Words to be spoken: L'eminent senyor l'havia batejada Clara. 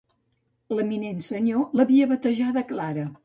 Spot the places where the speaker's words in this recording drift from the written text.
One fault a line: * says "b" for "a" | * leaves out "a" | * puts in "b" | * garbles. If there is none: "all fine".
all fine